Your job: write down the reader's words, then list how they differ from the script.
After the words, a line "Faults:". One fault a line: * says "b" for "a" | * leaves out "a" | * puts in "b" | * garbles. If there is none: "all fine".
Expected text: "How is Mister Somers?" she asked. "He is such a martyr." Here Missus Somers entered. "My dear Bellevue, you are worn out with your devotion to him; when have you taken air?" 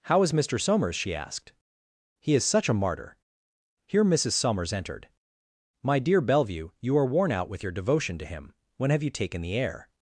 "How is Mister Somers?" she asked. "He is such a martyr." Here Missus Somers entered. "My dear Bellevue, you are worn out with your devotion to him; when have you taken the air?"
Faults:
* puts in "the"